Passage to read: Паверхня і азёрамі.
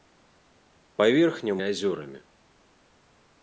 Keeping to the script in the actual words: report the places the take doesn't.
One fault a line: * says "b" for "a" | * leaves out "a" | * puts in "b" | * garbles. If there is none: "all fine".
all fine